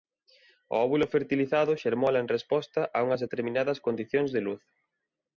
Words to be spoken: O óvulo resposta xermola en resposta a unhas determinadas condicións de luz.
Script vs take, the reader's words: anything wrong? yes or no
yes